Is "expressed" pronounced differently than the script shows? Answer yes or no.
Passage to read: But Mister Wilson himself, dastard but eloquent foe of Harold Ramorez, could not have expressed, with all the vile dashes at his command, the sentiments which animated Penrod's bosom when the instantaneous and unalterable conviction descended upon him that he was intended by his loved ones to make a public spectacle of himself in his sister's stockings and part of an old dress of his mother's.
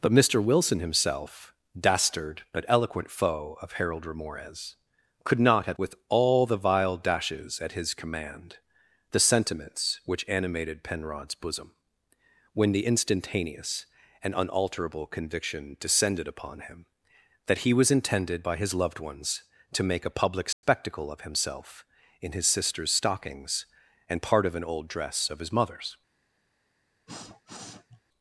yes